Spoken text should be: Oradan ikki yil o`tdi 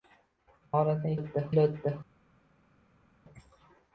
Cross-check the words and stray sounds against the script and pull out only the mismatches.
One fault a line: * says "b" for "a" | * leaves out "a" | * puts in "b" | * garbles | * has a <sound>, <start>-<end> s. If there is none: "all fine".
* says "o`tdi" for "ikki"